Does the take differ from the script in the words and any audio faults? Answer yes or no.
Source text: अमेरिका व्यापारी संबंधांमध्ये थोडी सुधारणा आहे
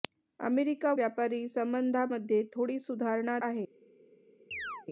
yes